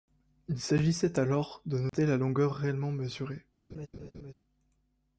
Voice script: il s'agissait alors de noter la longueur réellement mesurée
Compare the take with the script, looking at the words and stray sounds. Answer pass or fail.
fail